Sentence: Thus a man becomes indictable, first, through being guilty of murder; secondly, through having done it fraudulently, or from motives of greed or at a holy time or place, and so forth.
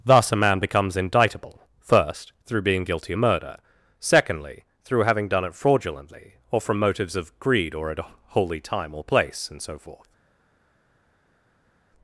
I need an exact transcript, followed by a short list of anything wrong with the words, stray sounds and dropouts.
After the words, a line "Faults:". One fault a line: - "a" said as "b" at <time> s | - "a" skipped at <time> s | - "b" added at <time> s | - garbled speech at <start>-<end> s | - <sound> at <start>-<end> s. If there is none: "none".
Thus a man becomes indictable, first, through being guilty of murder; secondly, through having done it fraudulently, or from motives of greed or at a holy time or place, and so forth.
Faults:
none